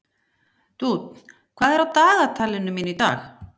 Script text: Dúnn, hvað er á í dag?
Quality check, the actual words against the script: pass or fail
fail